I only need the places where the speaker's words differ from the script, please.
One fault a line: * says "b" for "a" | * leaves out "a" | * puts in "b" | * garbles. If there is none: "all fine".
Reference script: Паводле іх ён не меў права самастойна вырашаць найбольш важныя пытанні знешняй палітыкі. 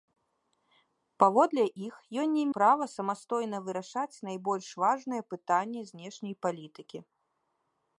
* leaves out "меў"